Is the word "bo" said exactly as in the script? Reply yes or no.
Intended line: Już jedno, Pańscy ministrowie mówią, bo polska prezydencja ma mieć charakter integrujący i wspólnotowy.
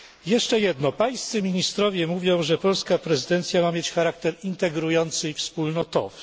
no